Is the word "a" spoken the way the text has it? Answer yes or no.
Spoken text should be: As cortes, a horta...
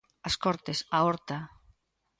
yes